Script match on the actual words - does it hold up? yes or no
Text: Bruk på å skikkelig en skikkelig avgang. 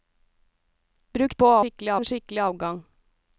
yes